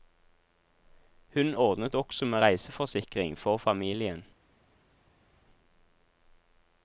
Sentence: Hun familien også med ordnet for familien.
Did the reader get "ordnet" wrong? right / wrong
wrong